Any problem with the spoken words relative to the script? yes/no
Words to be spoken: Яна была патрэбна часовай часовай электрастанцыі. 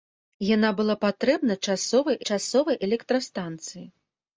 no